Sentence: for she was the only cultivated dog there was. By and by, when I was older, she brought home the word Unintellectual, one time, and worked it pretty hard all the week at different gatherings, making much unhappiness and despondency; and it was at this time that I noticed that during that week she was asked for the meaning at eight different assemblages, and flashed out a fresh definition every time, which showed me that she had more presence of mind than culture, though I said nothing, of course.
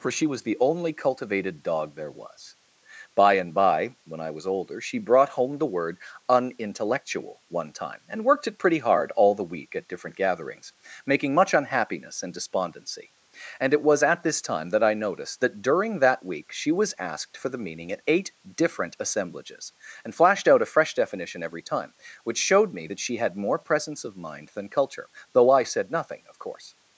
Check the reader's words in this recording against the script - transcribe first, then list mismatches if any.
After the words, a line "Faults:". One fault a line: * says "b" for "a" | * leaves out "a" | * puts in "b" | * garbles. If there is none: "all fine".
for she was the only cultivated dog there was. By and by, when I was older, she brought home the word Unintellectual, one time, and worked it pretty hard all the week at different gatherings, making much unhappiness and despondency; and it was at this time that I noticed that during that week she was asked for the meaning at eight different assemblages, and flashed out a fresh definition every time, which showed me that she had more presence of mind than culture, though I said nothing, of course.
Faults:
all fine